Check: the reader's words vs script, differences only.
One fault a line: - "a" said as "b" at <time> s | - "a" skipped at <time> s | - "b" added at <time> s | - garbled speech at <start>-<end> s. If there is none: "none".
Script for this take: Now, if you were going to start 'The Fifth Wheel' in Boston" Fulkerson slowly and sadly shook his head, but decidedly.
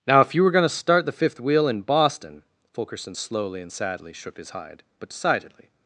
- "head" said as "hide" at 4.5 s